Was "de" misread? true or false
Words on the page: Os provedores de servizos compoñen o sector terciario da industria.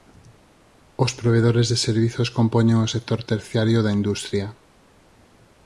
false